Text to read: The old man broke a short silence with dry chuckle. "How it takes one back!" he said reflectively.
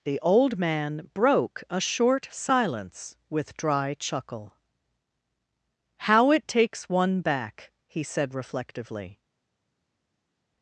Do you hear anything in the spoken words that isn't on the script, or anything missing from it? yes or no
no